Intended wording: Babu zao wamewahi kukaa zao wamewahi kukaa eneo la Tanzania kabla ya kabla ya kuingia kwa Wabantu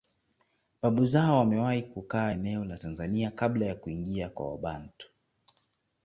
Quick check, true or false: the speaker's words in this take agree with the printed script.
false